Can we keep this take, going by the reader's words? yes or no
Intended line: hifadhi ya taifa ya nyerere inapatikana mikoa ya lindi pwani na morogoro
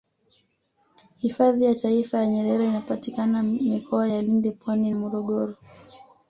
no